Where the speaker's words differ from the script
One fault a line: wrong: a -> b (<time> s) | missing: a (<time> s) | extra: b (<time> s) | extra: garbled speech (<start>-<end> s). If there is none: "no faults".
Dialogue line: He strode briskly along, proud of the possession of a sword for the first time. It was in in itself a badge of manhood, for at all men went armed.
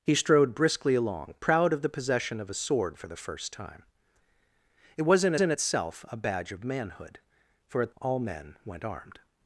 no faults